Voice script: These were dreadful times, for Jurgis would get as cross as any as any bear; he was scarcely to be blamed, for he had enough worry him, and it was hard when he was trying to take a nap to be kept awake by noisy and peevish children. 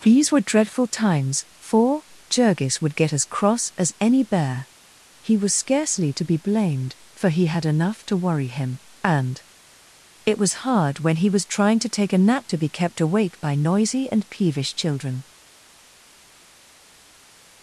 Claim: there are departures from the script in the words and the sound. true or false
true